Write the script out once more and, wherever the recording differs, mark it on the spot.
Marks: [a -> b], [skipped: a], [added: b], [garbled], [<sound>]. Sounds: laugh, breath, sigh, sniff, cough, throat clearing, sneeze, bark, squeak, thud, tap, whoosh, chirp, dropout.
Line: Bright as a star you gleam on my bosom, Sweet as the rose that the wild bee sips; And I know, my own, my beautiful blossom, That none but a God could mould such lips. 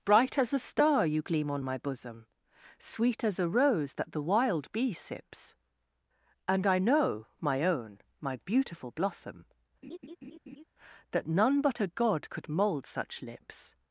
Bright as a star you gleam on my bosom, Sweet as [the -> a] rose that the wild bee sips; And I know, my own, my beautiful blossom, [laugh] That none but a God could mould such lips.